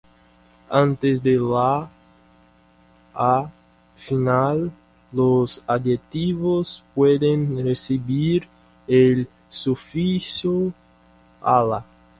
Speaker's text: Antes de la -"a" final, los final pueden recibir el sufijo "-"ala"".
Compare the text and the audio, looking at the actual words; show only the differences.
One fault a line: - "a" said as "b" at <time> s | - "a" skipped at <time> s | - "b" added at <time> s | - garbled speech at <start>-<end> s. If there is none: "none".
- "final" said as "adjetivos" at 5.6 s